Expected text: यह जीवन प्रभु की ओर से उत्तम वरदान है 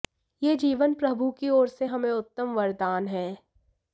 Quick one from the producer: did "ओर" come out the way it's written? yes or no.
yes